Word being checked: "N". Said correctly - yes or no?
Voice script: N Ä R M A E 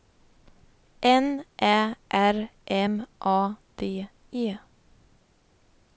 yes